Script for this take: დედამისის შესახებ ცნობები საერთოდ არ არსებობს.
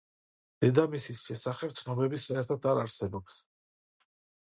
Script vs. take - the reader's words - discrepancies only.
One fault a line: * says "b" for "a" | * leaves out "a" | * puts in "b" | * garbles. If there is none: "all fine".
all fine